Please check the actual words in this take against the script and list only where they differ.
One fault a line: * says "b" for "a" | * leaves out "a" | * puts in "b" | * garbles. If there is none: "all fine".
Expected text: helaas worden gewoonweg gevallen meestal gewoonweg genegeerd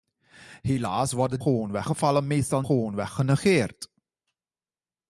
all fine